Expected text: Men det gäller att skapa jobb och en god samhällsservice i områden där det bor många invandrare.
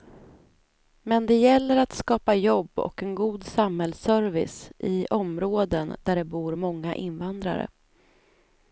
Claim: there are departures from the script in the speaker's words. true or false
false